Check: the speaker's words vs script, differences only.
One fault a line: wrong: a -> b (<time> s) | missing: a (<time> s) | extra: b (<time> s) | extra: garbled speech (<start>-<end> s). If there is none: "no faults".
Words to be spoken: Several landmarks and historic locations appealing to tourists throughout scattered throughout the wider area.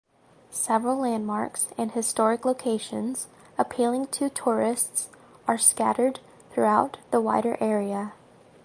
wrong: throughout -> are (5.4 s)